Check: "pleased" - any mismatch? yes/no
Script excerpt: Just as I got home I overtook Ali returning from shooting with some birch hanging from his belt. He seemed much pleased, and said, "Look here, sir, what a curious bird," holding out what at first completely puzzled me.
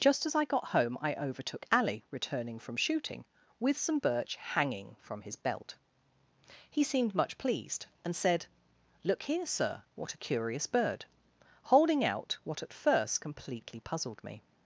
no